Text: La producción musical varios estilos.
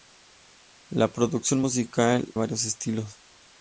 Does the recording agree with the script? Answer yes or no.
yes